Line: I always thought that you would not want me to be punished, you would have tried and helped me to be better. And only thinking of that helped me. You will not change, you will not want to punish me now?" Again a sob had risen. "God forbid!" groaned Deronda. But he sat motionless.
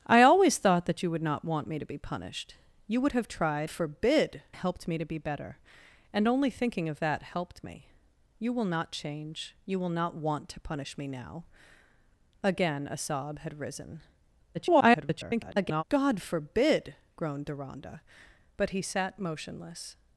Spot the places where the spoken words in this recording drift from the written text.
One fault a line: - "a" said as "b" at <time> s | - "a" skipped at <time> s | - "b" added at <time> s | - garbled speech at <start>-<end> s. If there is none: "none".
- "and" said as "forbid" at 3.7 s
- garbled speech at 14.5-15.8 s